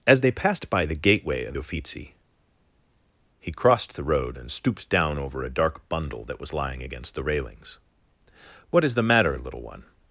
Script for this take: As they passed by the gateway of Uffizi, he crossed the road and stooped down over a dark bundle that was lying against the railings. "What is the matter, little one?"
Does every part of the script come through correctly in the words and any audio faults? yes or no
yes